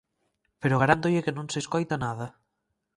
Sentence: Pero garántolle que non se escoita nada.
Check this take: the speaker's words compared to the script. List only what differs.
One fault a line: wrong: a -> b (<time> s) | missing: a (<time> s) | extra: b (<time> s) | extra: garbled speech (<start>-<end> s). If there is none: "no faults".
no faults